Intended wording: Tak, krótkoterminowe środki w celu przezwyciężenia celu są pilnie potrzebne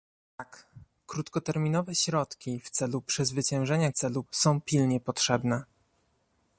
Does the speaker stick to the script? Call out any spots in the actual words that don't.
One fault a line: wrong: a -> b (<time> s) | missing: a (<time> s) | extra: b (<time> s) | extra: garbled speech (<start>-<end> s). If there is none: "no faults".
no faults